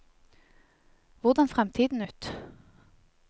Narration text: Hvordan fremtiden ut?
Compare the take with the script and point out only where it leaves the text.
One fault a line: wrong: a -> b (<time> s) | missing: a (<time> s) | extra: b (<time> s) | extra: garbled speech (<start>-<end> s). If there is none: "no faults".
no faults